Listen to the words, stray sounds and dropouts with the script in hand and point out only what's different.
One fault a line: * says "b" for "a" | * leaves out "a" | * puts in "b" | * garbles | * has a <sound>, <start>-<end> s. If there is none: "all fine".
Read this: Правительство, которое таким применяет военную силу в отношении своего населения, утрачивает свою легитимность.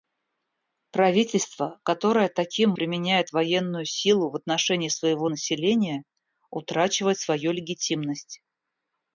all fine